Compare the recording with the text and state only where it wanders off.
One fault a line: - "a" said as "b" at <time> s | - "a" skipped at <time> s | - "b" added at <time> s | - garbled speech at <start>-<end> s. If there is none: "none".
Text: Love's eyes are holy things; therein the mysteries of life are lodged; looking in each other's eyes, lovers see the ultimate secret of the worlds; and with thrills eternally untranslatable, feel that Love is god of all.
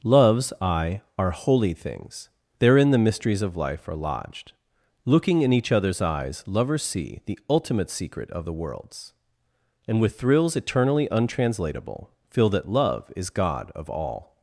- "eyes" said as "eye" at 0.6 s